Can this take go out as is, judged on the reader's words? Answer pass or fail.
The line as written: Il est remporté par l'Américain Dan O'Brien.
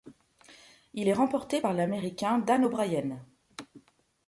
pass